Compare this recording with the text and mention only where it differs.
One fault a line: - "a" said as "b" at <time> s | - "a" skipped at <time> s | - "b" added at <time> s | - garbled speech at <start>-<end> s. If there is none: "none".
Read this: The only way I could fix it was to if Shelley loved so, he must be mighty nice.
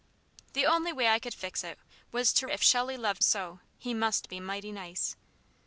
none